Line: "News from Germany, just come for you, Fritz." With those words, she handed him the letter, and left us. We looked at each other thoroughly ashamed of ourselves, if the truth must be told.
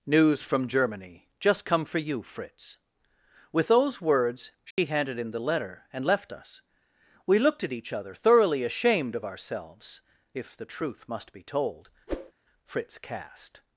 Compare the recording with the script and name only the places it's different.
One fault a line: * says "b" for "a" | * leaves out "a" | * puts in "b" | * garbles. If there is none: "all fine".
* puts in "Fritz cast"